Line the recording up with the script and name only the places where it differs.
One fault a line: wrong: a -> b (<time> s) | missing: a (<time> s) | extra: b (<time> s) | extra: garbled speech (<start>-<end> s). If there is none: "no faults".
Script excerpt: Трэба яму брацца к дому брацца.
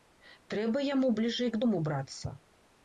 wrong: брацца -> бліжэй (1.2 s)